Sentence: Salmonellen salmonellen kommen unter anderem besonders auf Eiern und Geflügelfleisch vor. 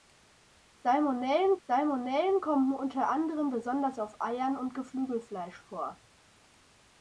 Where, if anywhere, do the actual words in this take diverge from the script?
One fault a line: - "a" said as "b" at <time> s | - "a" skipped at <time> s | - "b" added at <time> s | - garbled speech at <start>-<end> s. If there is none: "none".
none